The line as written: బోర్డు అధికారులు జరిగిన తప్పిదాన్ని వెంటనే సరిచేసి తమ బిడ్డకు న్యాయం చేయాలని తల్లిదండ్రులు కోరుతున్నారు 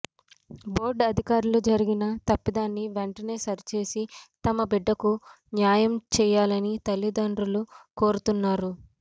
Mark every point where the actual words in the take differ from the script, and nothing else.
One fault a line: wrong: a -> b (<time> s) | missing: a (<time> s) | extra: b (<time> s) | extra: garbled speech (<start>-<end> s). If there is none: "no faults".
no faults